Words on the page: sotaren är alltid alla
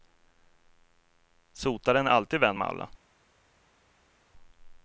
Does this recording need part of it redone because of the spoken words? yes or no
yes